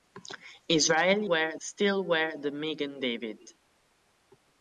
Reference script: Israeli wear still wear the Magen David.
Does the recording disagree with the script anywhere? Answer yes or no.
no